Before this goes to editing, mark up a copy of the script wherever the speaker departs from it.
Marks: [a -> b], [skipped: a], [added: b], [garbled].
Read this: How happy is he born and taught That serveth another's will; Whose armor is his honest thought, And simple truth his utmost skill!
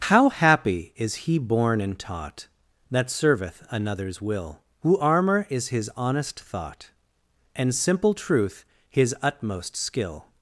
How happy is he born and taught That serveth another's will; Whose armor is his honest thought, And simple truth his utmost skill!